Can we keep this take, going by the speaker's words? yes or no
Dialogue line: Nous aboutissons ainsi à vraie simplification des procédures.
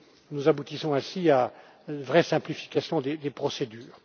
no